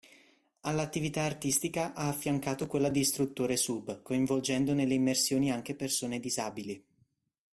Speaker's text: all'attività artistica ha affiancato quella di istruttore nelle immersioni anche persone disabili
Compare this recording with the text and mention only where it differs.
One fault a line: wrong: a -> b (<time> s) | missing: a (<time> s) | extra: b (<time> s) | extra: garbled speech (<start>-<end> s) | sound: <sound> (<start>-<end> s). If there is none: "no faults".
extra: sub coinvolgendo (3.5 s)